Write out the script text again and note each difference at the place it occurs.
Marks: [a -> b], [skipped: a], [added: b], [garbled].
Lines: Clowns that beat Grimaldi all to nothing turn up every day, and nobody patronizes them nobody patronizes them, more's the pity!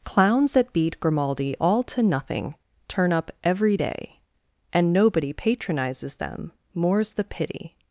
Clowns that beat Grimaldi all to nothing turn up every day, and nobody patronizes them [skipped: nobody patronizes them,] more's the pity!